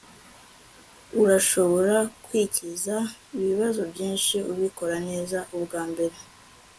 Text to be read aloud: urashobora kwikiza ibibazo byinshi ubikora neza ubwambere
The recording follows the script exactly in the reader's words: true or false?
true